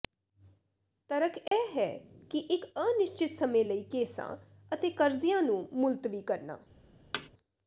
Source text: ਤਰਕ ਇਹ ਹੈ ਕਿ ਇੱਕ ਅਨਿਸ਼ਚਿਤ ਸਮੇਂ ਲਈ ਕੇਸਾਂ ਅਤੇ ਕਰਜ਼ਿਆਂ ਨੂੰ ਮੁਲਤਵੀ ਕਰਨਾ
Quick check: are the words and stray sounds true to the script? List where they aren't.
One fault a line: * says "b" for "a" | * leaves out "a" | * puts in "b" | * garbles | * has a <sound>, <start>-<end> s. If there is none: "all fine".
* has a dropout, 1.5-1.5 s
* has a thud, 7.1-7.3 s